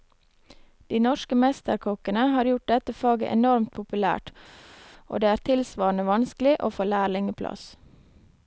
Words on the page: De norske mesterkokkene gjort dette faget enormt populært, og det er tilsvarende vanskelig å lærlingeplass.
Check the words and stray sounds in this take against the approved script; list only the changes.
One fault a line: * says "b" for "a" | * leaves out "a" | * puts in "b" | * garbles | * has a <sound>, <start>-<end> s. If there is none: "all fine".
* puts in "har"
* puts in "få"